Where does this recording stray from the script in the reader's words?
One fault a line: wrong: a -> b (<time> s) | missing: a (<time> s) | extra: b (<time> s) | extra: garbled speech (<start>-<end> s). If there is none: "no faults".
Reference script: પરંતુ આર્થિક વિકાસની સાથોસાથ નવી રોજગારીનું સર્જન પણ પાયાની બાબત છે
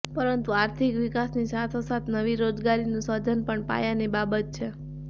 no faults